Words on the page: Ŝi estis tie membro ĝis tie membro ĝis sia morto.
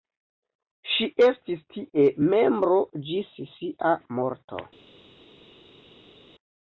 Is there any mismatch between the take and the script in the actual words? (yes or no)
yes